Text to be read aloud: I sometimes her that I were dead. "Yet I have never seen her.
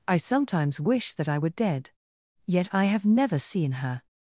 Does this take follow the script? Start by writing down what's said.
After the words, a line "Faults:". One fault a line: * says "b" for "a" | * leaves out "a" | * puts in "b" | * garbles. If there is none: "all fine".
I sometimes wish that I were dead. "Yet I have never seen her.
Faults:
* says "wish" for "her"